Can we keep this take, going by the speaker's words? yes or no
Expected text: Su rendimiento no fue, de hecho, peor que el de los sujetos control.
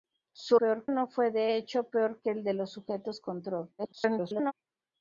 no